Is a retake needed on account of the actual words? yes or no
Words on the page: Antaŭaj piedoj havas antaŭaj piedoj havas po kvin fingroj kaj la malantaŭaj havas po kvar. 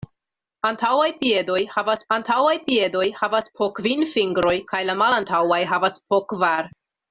no